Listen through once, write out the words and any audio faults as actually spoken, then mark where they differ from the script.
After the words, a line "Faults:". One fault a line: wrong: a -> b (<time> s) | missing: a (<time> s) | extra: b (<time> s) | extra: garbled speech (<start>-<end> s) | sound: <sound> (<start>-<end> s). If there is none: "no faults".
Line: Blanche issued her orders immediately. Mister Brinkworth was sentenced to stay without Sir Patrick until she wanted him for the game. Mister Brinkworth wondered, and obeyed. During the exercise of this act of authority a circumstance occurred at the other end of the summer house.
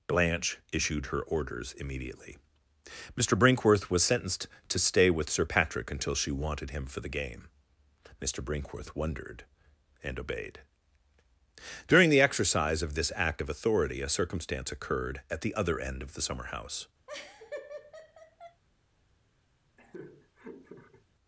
Blanche issued her orders immediately. Mister Brinkworth was sentenced to stay with Sir Patrick until she wanted him for the game. Mister Brinkworth wondered, and obeyed. During the exercise of this act of authority a circumstance occurred at the other end of the summer house.
Faults:
wrong: without -> with (5.1 s)
sound: laugh (17.1-18.6 s)
sound: laugh (19.8-21.1 s)